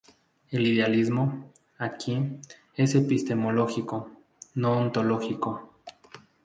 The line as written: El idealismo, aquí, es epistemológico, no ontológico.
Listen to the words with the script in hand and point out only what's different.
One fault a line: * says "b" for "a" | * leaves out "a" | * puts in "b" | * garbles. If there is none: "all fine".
all fine